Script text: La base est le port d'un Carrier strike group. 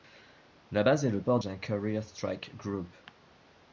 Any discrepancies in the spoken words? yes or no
no